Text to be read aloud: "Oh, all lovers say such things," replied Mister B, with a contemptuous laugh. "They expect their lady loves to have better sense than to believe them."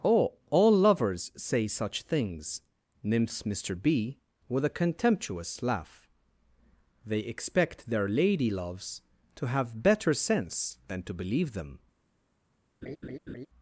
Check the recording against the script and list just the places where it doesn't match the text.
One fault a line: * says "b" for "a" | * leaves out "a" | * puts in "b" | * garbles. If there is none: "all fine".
* says "nymphs" for "replied"